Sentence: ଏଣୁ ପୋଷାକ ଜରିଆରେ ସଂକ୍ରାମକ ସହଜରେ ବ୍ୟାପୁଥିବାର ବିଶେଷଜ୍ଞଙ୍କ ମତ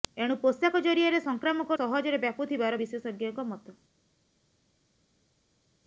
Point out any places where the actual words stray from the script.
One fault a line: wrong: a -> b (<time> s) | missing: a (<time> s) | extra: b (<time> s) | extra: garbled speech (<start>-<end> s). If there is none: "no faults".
no faults